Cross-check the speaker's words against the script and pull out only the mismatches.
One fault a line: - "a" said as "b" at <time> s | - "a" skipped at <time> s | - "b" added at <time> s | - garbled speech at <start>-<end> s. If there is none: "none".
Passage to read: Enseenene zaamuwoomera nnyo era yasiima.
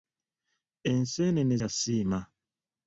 - "zaamuwoomera nnyo era" skipped at 1.6 s